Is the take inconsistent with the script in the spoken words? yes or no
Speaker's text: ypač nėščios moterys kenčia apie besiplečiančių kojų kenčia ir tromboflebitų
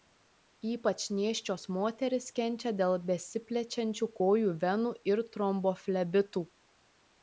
yes